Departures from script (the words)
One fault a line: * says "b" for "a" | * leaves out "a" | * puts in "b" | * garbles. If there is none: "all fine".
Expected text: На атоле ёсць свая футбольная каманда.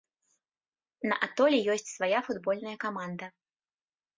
all fine